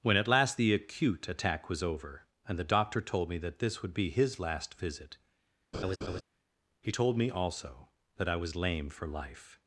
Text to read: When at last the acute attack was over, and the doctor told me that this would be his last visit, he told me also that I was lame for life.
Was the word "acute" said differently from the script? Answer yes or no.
no